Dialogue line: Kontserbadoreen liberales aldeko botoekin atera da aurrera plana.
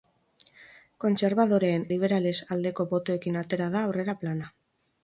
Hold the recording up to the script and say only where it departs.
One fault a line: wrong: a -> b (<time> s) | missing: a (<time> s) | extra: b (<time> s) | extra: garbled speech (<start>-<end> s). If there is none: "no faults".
no faults